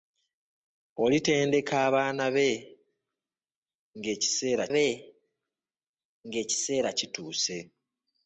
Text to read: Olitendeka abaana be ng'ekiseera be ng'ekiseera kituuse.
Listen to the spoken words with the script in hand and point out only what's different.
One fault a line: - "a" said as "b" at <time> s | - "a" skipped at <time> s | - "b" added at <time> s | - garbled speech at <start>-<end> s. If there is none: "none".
none